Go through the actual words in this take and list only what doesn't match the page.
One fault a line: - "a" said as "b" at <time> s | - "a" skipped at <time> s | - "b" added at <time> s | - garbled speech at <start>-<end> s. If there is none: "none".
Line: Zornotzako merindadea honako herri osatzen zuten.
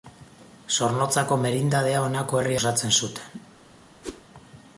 none